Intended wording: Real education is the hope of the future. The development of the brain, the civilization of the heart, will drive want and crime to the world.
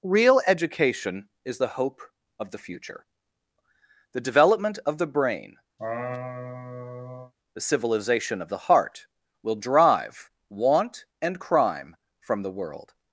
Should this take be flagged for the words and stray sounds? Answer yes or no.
yes